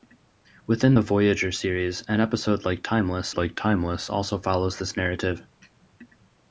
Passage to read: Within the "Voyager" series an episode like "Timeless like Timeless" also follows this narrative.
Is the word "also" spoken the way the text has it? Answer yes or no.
yes